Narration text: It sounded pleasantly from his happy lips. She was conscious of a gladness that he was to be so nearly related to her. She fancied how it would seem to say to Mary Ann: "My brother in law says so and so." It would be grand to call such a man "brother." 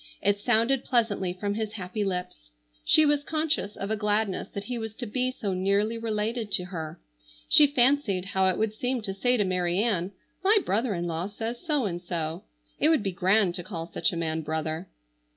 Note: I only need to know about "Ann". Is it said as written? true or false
true